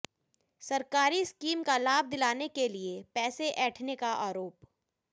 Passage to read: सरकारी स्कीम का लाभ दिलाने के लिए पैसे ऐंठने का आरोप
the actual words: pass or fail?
pass